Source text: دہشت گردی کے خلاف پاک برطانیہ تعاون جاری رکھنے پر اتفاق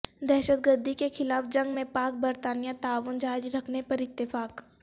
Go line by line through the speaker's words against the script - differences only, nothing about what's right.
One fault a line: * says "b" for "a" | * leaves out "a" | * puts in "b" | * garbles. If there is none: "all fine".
* puts in "جنگ میں"